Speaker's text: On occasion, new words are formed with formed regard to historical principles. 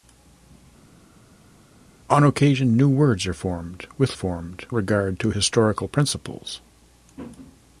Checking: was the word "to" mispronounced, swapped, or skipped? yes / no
no